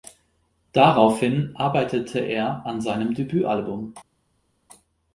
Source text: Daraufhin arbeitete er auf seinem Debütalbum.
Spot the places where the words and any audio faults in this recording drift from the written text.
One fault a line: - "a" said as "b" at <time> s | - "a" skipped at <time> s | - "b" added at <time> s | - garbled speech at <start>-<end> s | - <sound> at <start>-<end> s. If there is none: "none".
- "auf" said as "an" at 2.6 s